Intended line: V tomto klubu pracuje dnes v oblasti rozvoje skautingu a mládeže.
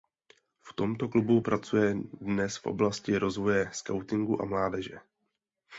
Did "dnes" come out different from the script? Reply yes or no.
no